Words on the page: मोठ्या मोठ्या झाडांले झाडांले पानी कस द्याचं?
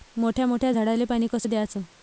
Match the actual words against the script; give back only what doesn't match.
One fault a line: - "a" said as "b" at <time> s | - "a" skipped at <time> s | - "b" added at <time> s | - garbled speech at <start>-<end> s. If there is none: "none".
- "झाडांले" skipped at 1.0 s